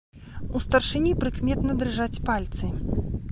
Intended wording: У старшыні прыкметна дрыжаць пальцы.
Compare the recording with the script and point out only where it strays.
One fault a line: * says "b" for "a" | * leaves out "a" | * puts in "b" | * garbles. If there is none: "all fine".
all fine